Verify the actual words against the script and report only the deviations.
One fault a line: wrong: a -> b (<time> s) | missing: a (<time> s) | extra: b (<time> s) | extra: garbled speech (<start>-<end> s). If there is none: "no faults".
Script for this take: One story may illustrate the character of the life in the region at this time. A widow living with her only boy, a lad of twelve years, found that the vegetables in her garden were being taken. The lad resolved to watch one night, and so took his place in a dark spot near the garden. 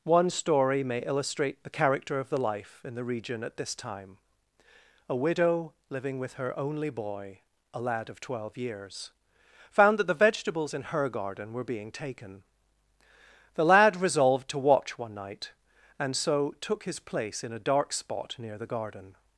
no faults